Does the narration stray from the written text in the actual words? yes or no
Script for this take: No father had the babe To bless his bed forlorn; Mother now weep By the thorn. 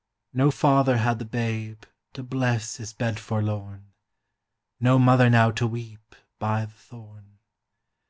yes